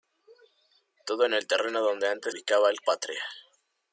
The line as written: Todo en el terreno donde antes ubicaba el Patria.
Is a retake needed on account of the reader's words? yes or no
no